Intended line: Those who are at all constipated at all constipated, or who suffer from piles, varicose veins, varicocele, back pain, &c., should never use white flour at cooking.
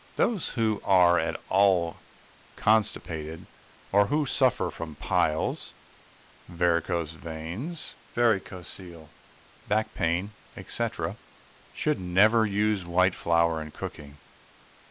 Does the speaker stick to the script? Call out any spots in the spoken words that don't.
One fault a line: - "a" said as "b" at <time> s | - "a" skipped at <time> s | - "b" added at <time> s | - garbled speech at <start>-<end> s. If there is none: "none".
- "at all constipated" skipped at 3.5 s
- "at" said as "in" at 13.6 s